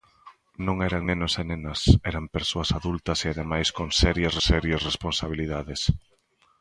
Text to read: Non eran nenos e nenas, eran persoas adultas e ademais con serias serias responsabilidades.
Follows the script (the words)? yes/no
yes